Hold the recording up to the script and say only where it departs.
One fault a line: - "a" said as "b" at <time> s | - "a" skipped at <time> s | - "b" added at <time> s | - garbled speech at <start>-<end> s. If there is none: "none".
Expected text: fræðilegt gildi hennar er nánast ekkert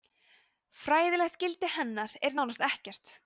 none